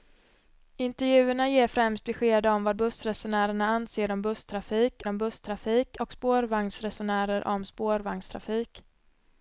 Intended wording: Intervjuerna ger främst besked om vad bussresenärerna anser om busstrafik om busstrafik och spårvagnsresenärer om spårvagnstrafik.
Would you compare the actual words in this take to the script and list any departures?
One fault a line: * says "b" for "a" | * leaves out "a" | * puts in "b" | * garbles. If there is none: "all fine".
all fine